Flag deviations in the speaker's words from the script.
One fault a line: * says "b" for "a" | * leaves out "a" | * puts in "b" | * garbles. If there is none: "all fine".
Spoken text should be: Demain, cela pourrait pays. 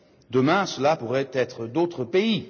* puts in "être d'autres"